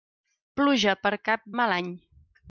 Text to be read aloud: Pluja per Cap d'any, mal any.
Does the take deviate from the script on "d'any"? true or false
true